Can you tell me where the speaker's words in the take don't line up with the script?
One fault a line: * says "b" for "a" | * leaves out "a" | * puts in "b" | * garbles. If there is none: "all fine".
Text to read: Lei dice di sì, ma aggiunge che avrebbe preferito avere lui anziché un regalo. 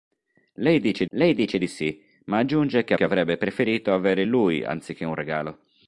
* puts in "lei dice"
* puts in "che"